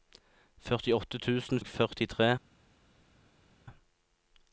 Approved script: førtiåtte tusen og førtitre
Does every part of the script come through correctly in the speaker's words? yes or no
yes